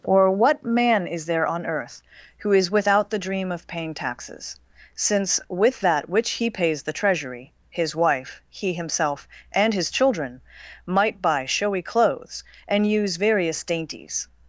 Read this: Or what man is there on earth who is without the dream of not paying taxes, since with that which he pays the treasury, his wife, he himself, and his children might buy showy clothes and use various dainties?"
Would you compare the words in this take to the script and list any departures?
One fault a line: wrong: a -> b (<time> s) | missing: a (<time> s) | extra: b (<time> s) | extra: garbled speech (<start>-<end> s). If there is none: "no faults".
missing: not (3.7 s)